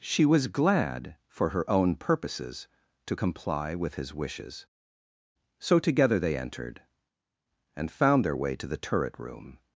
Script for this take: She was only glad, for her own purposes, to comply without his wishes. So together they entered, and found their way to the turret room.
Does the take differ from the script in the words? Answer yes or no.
yes